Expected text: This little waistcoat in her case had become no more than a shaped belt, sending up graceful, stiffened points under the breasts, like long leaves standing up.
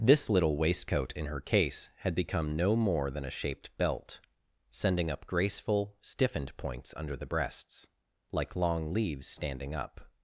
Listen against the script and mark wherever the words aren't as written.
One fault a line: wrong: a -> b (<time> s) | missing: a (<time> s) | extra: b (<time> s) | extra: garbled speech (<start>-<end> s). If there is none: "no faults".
no faults